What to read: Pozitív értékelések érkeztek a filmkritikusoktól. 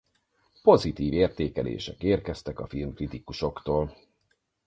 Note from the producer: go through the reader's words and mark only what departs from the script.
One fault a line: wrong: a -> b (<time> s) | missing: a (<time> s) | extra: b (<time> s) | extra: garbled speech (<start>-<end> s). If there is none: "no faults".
no faults